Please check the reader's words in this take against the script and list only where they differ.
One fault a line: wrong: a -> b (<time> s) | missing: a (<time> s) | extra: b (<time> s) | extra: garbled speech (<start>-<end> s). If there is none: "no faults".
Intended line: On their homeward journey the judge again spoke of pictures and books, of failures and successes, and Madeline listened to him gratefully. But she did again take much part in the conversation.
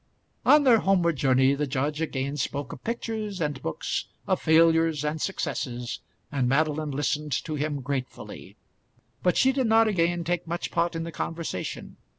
extra: not (9.7 s)